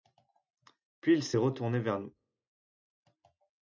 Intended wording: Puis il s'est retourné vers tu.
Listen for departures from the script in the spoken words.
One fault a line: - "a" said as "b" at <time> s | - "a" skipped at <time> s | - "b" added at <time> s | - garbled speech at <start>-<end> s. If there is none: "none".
- "tu" said as "nous" at 2.0 s